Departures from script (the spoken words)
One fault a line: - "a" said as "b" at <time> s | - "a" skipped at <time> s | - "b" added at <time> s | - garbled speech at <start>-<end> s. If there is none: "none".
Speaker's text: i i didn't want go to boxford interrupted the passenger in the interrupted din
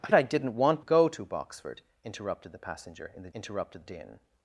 none